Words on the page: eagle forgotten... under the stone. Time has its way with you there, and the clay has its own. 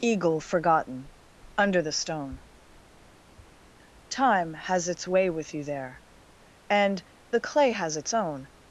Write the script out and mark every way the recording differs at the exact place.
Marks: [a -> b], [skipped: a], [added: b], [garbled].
eagle forgotten... under the stone. Time has its way with you there, and the clay has its own.